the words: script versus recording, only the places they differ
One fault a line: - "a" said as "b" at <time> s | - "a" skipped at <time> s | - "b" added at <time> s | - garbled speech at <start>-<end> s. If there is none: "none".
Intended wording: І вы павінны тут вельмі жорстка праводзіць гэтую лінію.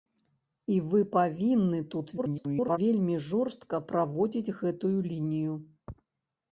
- garbled speech at 2.2-2.8 s